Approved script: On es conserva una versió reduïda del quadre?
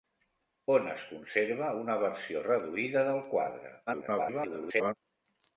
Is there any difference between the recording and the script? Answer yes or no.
yes